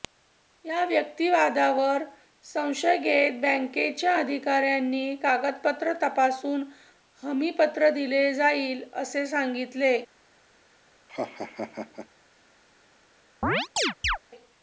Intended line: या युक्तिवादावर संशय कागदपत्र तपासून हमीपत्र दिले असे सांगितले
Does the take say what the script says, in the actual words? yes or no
no